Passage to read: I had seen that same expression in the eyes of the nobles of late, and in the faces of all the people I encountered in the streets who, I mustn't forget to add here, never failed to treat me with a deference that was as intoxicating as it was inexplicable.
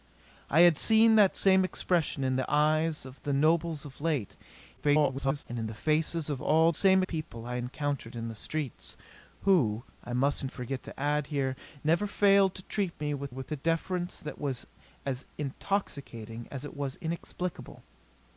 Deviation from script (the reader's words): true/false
true